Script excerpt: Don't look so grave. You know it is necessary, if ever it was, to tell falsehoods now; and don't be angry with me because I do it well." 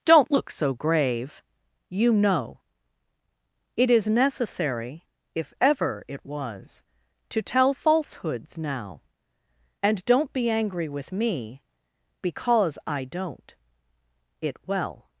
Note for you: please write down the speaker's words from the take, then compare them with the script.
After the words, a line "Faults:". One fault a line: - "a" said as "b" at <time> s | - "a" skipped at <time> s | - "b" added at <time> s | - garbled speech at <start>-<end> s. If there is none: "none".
Don't look so grave. You know it is necessary, if ever it was, to tell falsehoods now; and don't be angry with me because I don't it well."
Faults:
- "do" said as "don't" at 13.1 s